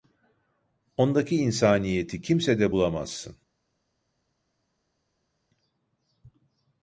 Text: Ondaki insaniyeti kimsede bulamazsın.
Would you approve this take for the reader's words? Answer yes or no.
yes